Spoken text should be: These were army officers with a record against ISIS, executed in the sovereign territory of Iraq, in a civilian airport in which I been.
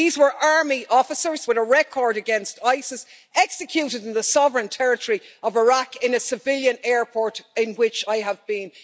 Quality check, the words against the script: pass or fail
fail